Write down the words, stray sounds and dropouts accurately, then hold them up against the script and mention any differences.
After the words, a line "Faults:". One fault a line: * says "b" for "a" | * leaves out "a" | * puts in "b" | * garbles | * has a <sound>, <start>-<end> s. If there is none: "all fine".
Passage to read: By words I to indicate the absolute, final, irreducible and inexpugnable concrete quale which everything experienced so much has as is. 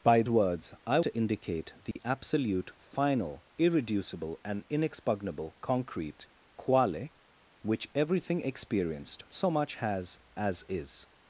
By words I to indicate the absolute, final, irreducible and inexpugnable concrete quale which everything experienced so much has as is.
Faults:
* has a dropout, 1.9-2.0 s